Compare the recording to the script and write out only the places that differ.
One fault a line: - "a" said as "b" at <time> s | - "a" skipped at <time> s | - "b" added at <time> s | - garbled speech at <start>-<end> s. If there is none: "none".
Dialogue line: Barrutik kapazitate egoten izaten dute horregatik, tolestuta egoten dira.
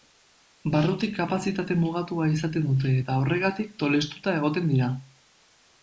- "egoten" said as "mugatua" at 1.8 s
- "eta" added at 3.0 s